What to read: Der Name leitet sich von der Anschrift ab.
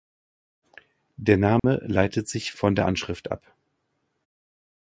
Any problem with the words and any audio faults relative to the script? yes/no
yes